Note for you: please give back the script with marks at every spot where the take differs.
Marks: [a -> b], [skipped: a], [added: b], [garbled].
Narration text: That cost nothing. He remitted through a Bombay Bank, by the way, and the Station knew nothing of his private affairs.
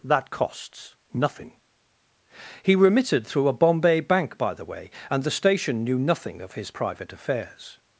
That [cost -> costs] nothing. He remitted through a Bombay Bank, by the way, and the Station knew nothing of his private affairs.